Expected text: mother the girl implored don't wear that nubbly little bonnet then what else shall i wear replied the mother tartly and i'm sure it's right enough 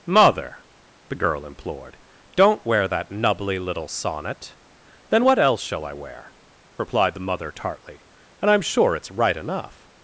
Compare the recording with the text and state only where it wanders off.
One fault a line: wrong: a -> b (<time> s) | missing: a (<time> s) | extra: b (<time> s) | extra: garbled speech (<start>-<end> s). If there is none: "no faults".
wrong: bonnet -> sonnet (3.9 s)